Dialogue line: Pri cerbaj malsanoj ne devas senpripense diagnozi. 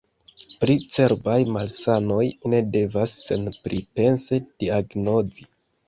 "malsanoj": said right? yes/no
yes